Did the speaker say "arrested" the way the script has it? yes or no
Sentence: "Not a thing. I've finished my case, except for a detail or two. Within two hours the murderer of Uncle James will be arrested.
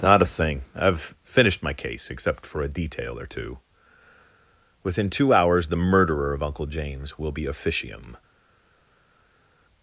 no